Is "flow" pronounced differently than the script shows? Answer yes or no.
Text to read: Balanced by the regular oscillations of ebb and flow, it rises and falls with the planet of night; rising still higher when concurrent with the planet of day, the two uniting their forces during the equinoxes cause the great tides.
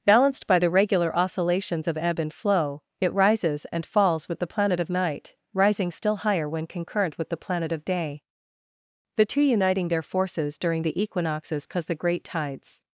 no